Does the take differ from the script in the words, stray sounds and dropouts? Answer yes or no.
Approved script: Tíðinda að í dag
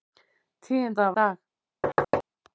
yes